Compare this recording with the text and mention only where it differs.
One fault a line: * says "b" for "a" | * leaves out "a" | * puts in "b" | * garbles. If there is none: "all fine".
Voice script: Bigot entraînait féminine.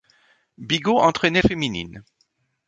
all fine